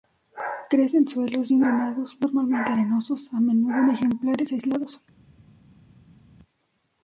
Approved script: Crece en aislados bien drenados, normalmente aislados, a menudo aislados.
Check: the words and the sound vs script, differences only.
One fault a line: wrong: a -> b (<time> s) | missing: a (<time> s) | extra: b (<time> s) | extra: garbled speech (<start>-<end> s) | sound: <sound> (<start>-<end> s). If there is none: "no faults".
wrong: aislados -> suelos (1.1 s)
wrong: aislados -> arenosos (2.7 s)
extra: en ejemplares (3.8 s)